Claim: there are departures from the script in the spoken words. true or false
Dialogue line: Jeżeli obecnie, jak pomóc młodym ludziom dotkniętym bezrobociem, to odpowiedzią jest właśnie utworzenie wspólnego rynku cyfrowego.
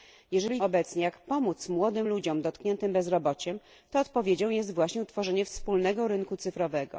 false